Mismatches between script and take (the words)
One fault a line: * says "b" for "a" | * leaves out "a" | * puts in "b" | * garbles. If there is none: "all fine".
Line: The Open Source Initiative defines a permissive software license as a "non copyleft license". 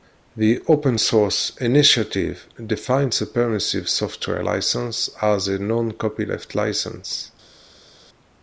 all fine